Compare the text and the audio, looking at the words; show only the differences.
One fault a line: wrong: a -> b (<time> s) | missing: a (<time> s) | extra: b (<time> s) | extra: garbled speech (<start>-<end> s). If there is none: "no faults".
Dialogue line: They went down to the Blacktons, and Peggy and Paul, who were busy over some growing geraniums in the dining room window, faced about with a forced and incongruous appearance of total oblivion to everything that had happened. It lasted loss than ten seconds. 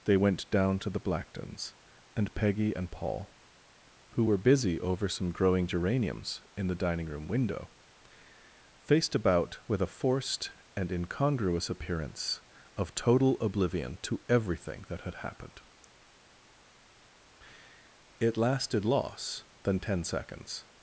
no faults